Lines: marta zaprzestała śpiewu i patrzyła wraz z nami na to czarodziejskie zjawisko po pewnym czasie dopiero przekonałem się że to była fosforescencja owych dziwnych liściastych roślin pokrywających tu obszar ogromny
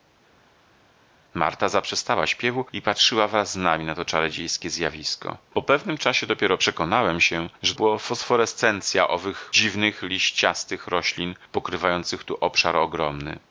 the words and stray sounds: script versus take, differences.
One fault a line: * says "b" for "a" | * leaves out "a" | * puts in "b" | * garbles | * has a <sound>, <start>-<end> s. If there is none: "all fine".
* leaves out "to"